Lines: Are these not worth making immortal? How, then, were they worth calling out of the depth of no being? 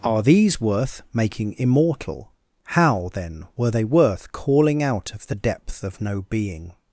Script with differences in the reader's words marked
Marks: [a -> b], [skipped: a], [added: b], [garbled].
Are these [skipped: not] worth making immortal? How, then, were they worth calling out of the depth of no being?